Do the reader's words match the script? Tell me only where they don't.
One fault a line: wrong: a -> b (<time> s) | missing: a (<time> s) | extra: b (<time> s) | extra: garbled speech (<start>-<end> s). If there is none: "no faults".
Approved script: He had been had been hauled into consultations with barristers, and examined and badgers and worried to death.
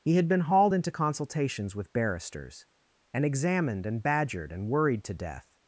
missing: had been (0.4 s)
wrong: badgers -> badgered (4.0 s)